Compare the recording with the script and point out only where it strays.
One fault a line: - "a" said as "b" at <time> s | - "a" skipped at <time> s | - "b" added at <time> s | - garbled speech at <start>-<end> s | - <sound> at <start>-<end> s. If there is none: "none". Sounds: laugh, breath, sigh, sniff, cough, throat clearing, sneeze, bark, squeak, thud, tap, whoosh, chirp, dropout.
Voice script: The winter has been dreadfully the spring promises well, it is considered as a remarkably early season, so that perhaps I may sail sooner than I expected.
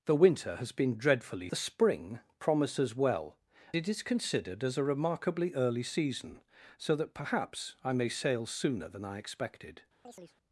- chirp at 10.0-10.4 s